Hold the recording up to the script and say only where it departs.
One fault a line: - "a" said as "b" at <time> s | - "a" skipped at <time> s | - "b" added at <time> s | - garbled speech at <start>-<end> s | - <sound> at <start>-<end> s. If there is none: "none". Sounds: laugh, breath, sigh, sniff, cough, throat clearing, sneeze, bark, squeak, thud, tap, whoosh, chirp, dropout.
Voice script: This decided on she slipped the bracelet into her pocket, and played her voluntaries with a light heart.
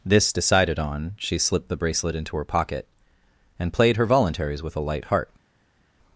none